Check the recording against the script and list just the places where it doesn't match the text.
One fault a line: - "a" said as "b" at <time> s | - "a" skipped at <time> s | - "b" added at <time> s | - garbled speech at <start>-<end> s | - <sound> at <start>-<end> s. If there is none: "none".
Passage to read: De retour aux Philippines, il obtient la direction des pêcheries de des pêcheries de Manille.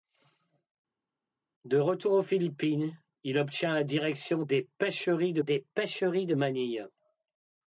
none